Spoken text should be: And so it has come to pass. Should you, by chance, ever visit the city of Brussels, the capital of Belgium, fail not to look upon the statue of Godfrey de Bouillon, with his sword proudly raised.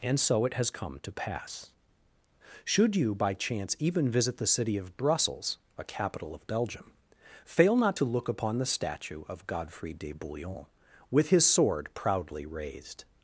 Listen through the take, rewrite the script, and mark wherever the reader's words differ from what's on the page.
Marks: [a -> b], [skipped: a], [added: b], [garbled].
And so it has come to pass. Should you, by chance, [ever -> even] visit the city of Brussels, [the -> a] capital of Belgium, fail not to look upon the statue of Godfrey de Bouillon, with his sword proudly raised.